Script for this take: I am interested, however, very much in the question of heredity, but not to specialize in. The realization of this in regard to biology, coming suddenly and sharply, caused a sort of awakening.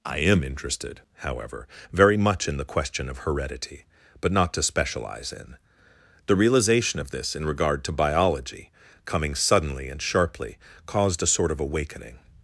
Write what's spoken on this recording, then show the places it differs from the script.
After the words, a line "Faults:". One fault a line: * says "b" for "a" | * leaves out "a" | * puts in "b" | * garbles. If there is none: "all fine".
I am interested, however, very much in the question of heredity, but not to specialize in. The realization of this in regard to biology, coming suddenly and sharply, caused a sort of awakening.
Faults:
all fine